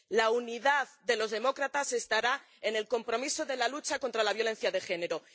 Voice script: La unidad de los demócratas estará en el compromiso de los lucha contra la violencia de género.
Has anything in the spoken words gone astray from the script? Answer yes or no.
yes